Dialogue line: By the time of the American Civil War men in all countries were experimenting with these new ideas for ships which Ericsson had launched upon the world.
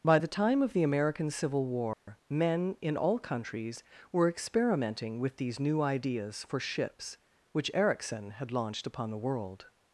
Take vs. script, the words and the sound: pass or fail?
fail